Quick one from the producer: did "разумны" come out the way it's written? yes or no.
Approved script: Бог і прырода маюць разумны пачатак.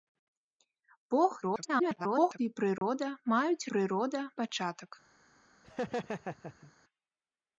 no